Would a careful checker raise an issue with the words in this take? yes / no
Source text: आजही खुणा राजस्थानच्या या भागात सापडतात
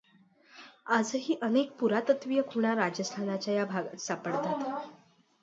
yes